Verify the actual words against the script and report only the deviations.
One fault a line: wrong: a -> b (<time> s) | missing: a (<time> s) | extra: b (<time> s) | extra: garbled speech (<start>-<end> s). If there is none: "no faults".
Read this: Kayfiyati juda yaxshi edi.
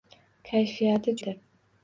missing: juda yaxshi (1.1 s)